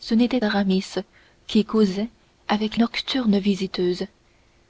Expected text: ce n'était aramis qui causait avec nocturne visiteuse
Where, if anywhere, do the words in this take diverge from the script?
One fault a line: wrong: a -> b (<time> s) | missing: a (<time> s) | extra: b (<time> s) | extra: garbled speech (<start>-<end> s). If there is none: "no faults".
no faults